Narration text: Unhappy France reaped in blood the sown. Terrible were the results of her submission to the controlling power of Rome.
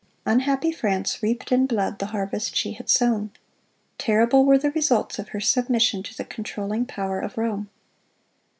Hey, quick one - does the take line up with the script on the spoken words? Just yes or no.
no